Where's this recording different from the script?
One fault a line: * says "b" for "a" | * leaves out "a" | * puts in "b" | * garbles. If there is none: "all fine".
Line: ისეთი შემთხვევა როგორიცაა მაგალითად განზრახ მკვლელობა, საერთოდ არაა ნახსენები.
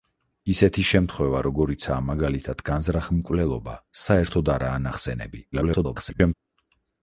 * garbles